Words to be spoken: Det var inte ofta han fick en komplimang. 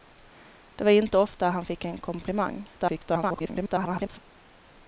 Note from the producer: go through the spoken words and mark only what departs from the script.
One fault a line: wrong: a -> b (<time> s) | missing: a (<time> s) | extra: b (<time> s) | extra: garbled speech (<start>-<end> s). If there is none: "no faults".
extra: garbled speech (2.8-4.2 s)